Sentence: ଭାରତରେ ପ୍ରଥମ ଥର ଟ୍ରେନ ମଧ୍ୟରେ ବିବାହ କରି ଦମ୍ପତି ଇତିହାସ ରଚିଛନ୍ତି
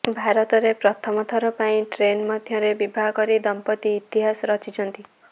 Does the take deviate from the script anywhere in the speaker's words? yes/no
yes